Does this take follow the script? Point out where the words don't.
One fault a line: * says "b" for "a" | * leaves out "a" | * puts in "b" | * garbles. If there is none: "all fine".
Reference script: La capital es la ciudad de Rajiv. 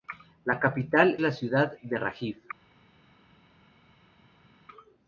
* leaves out "es"